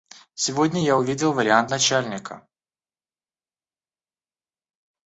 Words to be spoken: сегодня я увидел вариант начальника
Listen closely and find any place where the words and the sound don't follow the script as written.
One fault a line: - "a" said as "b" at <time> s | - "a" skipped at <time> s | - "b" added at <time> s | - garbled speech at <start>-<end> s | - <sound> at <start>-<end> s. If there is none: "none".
none